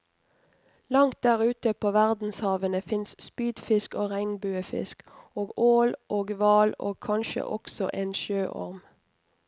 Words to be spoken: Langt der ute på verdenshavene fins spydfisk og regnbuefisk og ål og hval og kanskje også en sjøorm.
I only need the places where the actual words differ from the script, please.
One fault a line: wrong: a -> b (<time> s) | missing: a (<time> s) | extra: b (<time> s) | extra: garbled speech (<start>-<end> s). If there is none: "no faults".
no faults